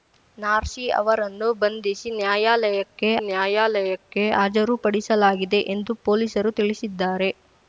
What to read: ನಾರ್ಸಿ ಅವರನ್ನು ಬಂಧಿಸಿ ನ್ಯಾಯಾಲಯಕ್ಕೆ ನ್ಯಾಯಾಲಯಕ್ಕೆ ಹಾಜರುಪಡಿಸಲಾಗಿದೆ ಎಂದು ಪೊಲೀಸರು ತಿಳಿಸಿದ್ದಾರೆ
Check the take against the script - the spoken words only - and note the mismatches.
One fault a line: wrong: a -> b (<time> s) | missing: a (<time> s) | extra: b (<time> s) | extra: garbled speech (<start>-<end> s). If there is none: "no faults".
no faults